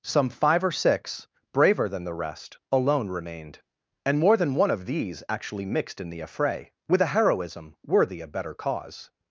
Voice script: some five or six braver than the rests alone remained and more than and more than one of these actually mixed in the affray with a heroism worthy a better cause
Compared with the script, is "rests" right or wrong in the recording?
wrong